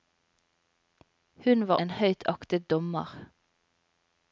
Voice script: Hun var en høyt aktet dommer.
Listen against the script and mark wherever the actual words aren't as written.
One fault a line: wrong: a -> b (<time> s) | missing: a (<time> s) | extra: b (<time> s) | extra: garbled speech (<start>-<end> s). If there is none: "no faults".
no faults